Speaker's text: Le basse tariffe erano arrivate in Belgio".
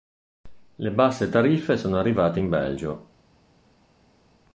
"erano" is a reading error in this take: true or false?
true